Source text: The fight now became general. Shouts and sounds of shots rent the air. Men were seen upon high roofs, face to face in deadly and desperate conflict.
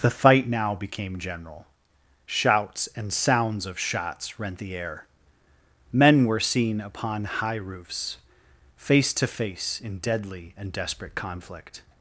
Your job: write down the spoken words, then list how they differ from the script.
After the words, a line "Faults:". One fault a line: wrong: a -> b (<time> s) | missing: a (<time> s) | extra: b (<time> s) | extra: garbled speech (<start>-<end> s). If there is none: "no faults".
The fight now became general. Shouts and sounds of shots rent the air. Men were seen upon high roofs, face to face in deadly and desperate conflict.
Faults:
no faults